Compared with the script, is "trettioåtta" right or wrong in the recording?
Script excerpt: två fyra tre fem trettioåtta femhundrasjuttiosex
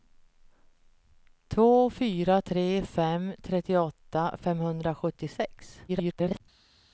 right